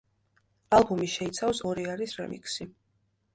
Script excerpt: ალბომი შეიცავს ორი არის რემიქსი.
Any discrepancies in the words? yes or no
no